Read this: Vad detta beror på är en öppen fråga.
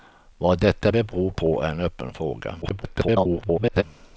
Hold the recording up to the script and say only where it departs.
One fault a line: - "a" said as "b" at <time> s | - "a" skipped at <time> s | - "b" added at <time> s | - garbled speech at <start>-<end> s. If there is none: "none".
- garbled speech at 2.6-3.8 s